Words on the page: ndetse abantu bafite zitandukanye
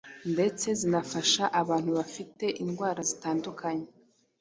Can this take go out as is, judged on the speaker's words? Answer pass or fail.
fail